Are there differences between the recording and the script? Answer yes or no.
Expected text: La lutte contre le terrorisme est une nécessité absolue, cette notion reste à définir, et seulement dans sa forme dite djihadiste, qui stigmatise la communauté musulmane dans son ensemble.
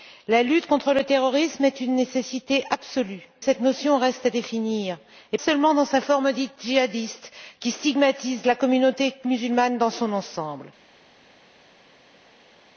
no